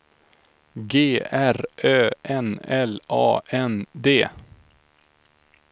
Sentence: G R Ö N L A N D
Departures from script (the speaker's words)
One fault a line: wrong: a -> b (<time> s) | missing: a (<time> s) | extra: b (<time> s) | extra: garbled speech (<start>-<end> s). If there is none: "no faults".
no faults